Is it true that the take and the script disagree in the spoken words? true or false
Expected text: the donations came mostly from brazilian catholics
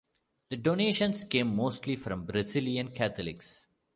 false